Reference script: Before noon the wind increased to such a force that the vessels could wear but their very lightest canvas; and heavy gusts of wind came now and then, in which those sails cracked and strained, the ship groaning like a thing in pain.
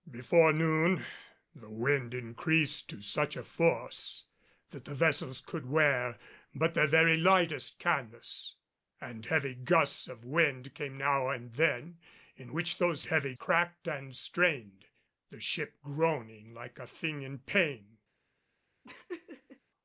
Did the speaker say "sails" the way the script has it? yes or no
no